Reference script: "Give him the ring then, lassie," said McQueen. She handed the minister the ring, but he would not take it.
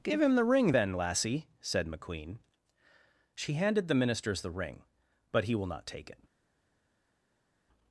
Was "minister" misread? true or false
true